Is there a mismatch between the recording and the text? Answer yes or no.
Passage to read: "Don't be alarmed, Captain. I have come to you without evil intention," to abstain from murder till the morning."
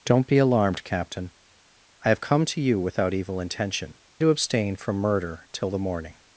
no